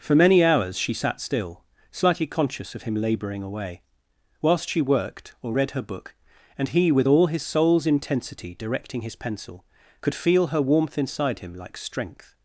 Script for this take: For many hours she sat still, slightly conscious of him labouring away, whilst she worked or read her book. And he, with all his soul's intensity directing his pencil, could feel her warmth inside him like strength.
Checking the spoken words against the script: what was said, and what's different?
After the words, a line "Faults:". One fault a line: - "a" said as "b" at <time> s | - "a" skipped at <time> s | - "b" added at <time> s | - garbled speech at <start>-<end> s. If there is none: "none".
For many hours she sat still, slightly conscious of him labouring away, whilst she worked or read her book. And he, with all his soul's intensity directing his pencil, could feel her warmth inside him like strength.
Faults:
none